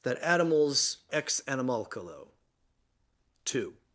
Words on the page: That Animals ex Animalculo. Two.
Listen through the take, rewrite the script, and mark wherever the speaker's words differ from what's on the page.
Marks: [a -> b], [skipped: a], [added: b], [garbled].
That Animals ex Animalculo. Two.